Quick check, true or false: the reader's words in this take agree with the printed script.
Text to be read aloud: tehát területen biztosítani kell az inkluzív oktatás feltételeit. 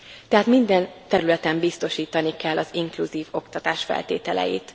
false